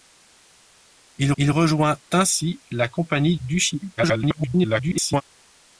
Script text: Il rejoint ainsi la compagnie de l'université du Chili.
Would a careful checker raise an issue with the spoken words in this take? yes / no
yes